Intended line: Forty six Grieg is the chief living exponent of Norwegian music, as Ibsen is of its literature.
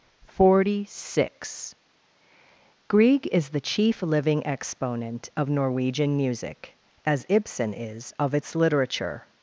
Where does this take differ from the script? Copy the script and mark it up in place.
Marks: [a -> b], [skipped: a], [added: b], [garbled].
Forty six Grieg is the chief living exponent of Norwegian music, as Ibsen is of its literature.